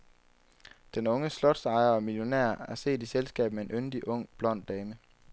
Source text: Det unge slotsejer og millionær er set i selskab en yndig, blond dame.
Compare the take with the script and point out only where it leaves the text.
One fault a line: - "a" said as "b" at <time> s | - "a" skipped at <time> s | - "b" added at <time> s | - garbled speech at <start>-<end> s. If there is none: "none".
- "Det" said as "Den" at 0.9 s
- "med" added at 3.5 s
- "ung" added at 4.1 s